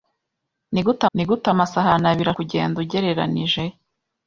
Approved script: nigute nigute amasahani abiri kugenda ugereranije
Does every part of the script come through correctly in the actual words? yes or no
yes